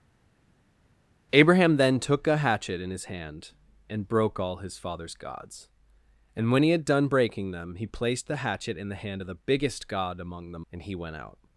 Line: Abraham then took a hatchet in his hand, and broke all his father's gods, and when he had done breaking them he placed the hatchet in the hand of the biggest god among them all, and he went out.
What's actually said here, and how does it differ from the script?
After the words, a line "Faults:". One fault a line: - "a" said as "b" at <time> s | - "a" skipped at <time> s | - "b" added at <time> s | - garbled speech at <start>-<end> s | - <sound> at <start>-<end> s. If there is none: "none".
Abraham then took a hatchet in his hand, and broke all his father's gods, and when he had done breaking them he placed the hatchet in the hand of the biggest god among them and he went out.
Faults:
- "all" skipped at 10.7 s